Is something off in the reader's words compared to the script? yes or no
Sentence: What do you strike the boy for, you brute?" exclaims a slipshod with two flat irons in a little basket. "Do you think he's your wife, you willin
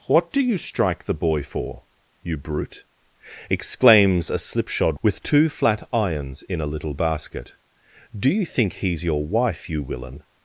no